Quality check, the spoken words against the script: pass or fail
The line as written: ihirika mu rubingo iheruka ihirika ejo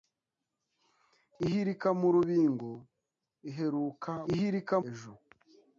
pass